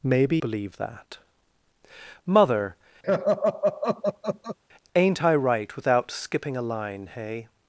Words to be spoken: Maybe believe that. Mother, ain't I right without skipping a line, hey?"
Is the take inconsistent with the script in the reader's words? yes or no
no